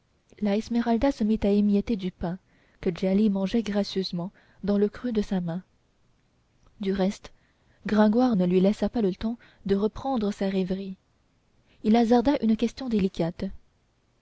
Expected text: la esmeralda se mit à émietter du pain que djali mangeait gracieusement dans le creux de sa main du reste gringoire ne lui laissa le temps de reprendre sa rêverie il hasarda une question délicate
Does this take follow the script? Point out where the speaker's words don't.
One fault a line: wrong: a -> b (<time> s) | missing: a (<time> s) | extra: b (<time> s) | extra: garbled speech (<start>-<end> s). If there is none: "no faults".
extra: pas (8.9 s)